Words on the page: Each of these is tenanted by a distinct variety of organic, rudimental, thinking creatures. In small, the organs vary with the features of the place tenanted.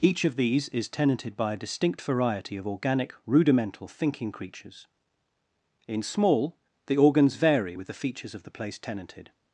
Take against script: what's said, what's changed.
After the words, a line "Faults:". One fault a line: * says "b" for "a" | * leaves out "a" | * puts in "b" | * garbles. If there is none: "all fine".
Each of these is tenanted by a distinct variety of organic, rudimental, thinking creatures. In small, the organs vary with the features of the place tenanted.
Faults:
all fine